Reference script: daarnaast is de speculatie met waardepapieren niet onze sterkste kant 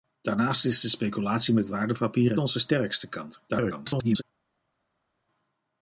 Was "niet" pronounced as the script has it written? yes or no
no